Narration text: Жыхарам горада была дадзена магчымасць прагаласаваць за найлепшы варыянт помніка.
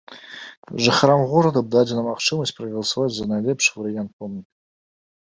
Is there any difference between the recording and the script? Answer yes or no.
yes